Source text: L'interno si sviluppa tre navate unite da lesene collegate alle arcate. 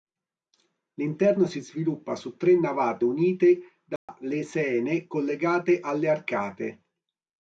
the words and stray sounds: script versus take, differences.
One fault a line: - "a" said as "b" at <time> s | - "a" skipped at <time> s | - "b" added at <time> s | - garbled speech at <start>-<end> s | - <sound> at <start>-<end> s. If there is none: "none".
- "su" added at 2.1 s
- dropout at 4.0-4.1 s